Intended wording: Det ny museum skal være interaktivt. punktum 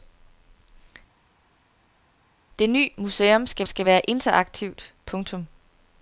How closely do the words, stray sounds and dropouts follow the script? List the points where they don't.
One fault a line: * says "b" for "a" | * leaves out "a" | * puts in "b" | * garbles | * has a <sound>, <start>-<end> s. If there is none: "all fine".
* puts in "skal"